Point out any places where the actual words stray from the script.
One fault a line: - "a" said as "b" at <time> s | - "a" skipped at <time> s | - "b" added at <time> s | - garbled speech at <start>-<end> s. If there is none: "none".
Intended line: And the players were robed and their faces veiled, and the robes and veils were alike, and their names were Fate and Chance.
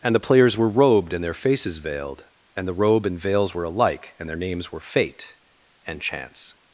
- "robes" said as "robe" at 2.7 s